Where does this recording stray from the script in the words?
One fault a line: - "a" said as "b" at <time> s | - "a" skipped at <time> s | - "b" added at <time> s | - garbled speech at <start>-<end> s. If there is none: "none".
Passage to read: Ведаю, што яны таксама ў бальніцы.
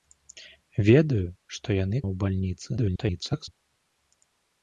- "таксама" skipped at 2.0 s
- garbled speech at 2.8-3.5 s